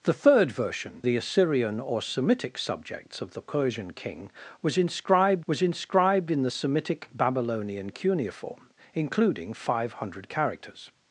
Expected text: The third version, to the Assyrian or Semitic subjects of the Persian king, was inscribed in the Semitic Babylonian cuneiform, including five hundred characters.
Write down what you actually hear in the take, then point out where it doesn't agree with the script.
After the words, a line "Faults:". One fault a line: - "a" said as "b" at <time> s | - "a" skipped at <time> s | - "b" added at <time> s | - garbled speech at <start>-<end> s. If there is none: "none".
The third version, the Assyrian or Semitic subjects of the Persian king, was inscribed was inscribed in the Semitic Babylonian cuneiform, including five hundred characters.
Faults:
- "to" skipped at 1.0 s
- "was inscribed" added at 5.5 s